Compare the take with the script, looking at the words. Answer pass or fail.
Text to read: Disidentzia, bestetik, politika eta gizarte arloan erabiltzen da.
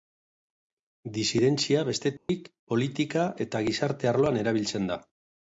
pass